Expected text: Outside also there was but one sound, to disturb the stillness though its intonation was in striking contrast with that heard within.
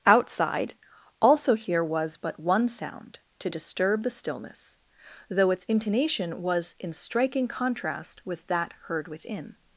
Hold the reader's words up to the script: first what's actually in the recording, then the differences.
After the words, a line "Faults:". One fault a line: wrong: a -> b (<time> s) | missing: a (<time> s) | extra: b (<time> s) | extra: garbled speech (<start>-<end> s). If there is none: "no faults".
Outside also here was but one sound, to disturb the stillness though its intonation was in striking contrast with that heard within.
Faults:
wrong: there -> here (1.5 s)